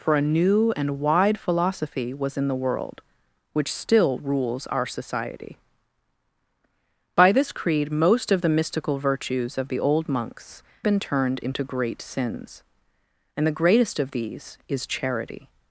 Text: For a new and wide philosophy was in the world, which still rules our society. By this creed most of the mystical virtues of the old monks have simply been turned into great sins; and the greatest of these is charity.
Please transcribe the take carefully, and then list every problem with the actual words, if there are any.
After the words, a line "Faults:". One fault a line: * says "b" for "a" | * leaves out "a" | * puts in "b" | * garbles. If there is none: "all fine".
For a new and wide philosophy was in the world, which still rules our society. By this creed most of the mystical virtues of the old monks been turned into great sins; and the greatest of these is charity.
Faults:
* leaves out "have simply"